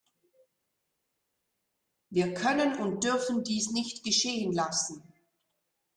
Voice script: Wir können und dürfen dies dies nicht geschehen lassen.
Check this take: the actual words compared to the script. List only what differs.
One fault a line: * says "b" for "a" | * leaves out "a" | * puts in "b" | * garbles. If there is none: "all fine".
* leaves out "dies"